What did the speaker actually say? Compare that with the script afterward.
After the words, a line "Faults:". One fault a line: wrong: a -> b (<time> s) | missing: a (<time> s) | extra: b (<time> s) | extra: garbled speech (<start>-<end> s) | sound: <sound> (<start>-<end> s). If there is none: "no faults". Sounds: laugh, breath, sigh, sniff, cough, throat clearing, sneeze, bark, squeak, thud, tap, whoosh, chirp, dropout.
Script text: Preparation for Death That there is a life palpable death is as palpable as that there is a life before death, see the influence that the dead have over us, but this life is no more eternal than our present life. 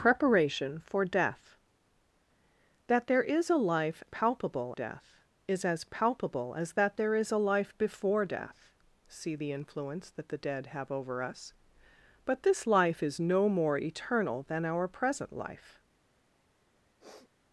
Preparation for Death That there is a life palpable death is as palpable as that there is a life before death, see the influence that the dead have over us, but this life is no more eternal than our present life.
Faults:
sound: sniff (17.0-17.3 s)